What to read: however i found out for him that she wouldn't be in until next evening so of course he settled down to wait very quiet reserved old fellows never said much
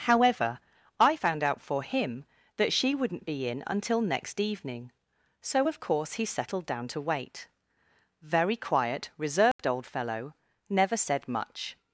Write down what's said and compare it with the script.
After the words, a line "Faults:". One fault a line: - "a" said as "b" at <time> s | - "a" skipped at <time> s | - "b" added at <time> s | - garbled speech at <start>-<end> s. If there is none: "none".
however i found out for him that she wouldn't be in until next evening so of course he settled down to wait very quiet reserved old fellow never said much
Faults:
- "fellows" said as "fellow" at 9.9 s